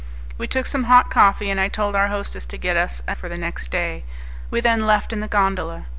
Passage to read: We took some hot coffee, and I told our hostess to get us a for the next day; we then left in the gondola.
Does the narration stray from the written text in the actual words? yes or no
no